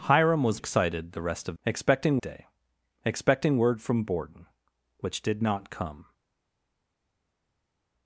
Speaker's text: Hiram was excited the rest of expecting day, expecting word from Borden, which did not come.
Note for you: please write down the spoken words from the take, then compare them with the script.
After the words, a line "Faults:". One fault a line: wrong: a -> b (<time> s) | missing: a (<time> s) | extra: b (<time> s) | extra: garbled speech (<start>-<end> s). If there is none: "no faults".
Hiram was excited the rest of expecting day, expecting word from Borden, which did not come.
Faults:
no faults